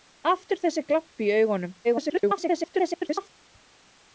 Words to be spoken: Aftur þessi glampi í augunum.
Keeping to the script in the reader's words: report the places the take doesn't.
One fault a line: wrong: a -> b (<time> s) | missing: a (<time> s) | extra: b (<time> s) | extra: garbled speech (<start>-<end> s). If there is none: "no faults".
extra: garbled speech (1.8-3.3 s)